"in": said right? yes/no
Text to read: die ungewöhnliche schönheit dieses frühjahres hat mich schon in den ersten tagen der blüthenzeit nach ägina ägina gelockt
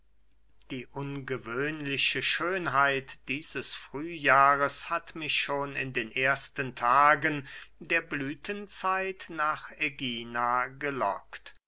yes